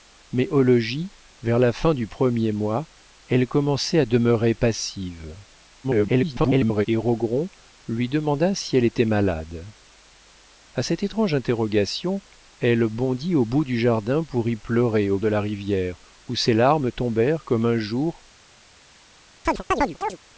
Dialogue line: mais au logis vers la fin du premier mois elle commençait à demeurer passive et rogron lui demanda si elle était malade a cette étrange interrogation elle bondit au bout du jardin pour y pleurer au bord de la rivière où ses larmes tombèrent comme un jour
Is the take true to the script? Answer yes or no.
no